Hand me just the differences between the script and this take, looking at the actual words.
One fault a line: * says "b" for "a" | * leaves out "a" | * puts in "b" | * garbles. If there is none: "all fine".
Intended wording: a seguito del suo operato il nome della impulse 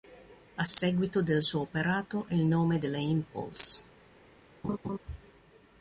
all fine